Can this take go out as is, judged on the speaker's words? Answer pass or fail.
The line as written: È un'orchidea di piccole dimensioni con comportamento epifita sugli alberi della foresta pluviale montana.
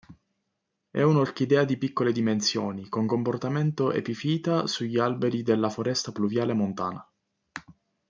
pass